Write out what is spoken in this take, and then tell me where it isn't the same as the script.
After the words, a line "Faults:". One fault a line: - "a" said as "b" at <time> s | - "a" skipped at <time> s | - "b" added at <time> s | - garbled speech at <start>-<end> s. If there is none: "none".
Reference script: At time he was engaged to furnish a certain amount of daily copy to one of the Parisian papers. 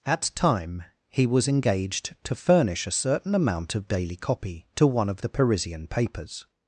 At time he was engaged to furnish a certain amount of daily copy to one of the Parisian papers.
Faults:
none